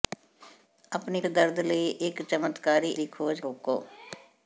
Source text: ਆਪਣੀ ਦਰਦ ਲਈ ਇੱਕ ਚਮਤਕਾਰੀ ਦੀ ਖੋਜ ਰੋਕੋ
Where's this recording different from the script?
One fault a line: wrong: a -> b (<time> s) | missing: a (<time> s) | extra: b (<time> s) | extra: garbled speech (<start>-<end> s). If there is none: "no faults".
no faults